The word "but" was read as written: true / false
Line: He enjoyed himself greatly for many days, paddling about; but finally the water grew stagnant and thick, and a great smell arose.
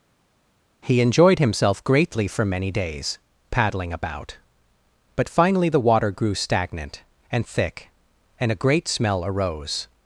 true